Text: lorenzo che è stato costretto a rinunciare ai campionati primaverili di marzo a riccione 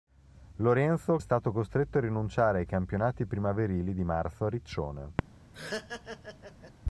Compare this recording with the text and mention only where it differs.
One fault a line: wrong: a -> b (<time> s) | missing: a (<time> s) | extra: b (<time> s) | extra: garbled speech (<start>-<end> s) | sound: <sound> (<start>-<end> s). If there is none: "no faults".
missing: che (1.2 s)
sound: laugh (5.5-6.7 s)